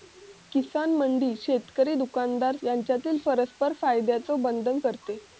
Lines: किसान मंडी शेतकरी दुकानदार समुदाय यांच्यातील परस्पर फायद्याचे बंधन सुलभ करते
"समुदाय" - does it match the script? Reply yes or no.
no